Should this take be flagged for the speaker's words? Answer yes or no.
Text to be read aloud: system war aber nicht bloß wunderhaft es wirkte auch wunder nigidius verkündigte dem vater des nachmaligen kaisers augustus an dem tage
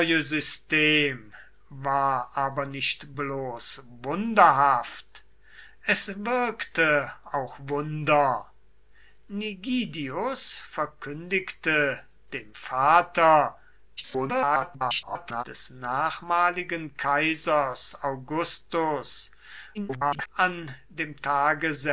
yes